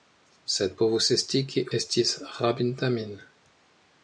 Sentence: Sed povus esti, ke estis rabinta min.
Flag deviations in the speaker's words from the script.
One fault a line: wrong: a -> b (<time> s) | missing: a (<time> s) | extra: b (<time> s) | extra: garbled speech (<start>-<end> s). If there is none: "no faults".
no faults